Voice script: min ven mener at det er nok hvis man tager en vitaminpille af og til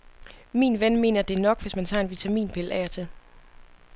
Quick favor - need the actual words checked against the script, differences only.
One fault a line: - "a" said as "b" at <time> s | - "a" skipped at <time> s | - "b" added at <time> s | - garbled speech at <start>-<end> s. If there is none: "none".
none